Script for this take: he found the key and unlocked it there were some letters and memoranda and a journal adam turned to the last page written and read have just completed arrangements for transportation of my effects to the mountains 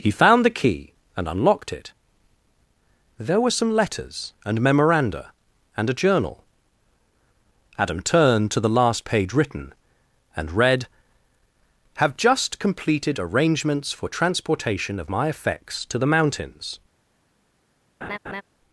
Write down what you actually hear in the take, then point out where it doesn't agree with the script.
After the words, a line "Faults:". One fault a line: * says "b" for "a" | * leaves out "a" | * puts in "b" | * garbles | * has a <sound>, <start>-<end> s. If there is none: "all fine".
he found the key and unlocked it there were some letters and memoranda and a journal adam turned to the last page written and read have just completed arrangements for transportation of my effects to the mountains
Faults:
* has a laugh, 18.0-18.4 s